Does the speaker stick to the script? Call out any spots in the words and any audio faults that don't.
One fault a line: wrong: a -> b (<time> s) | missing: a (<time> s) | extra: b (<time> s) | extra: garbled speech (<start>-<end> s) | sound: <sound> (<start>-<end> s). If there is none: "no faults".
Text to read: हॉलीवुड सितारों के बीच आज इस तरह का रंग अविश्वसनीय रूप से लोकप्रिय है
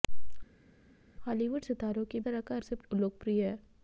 missing: बीच आज इस (2.2 s)
missing: रंग अविश्वसनीय रूप (2.6 s)